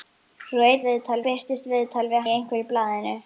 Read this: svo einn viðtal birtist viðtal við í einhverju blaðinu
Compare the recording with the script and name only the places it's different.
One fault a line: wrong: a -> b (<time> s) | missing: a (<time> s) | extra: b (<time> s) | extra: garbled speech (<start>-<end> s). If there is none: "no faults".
no faults